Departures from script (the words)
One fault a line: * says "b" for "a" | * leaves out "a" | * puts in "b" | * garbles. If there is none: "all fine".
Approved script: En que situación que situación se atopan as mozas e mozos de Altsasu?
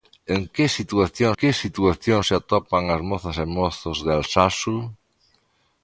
all fine